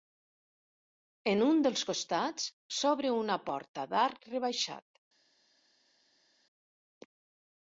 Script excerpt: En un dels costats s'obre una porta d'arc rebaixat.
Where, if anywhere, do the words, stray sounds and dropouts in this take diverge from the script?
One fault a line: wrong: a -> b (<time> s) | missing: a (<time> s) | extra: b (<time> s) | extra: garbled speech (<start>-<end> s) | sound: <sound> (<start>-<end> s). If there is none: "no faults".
no faults